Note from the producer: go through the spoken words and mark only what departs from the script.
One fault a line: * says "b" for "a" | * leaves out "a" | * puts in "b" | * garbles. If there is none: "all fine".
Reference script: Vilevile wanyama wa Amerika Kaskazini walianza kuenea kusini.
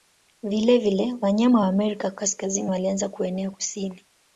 all fine